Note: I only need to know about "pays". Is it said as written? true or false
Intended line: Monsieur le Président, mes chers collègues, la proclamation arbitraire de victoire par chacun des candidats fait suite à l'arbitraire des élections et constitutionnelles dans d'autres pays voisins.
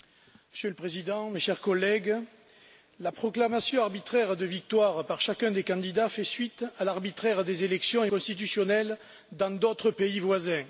true